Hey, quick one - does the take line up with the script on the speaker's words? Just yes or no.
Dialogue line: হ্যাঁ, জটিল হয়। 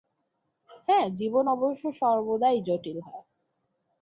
no